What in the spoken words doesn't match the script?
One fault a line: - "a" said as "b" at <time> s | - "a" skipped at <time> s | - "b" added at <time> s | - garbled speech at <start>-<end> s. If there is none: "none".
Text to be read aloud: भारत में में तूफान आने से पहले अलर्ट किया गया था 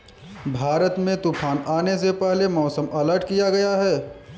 - "में" skipped at 1.1 s
- "मौसम" added at 2.5 s
- "था" said as "है" at 3.8 s